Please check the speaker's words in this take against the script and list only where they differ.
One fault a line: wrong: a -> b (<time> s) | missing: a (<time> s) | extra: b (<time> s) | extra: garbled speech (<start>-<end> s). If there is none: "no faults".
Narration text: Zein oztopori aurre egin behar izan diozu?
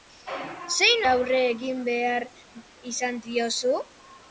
missing: oztopori (1.1 s)